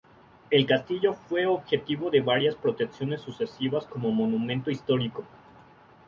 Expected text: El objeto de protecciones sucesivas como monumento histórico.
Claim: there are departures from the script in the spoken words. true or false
true